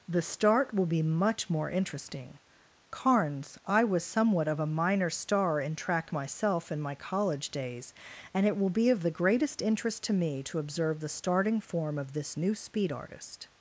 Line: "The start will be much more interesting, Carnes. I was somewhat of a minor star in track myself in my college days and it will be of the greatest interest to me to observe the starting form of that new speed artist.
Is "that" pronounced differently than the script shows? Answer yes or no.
yes